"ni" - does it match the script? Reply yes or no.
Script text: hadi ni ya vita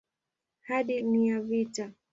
yes